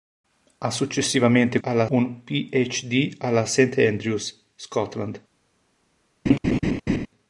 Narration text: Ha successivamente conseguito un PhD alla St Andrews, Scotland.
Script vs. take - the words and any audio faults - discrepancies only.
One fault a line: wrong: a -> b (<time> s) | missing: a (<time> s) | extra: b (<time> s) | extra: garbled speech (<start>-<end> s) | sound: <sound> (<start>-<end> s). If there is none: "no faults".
wrong: conseguito -> alla (1.6 s)
sound: laugh (6.3-7.1 s)